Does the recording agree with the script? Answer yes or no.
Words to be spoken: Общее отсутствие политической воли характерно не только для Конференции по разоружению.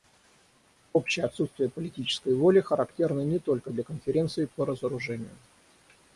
yes